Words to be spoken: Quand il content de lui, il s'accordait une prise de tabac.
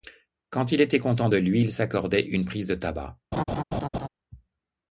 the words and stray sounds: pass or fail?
fail